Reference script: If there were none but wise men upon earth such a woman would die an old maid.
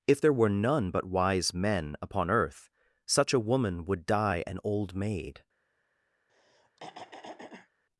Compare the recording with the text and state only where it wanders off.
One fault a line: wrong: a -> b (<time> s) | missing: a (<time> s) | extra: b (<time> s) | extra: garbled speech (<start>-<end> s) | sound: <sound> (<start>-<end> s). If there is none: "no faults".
sound: throat clearing (6.3-7.7 s)